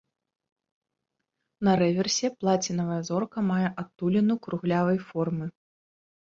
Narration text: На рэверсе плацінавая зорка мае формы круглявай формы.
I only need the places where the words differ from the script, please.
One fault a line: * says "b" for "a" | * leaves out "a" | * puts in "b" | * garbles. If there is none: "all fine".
* says "адтуліну" for "формы"